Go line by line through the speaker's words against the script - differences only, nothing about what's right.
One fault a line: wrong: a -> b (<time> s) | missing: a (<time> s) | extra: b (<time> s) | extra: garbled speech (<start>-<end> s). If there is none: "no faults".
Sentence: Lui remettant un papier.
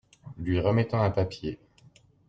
no faults